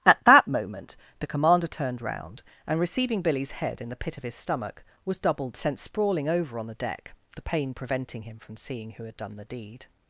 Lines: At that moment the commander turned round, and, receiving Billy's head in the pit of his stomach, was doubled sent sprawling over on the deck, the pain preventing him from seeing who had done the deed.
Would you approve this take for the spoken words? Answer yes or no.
yes